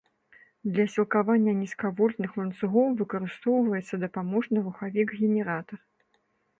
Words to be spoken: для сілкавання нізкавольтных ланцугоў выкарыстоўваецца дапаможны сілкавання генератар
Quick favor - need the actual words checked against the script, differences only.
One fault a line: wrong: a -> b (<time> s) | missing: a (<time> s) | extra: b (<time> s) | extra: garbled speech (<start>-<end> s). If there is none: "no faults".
wrong: сілкавання -> рухавік (4.7 s)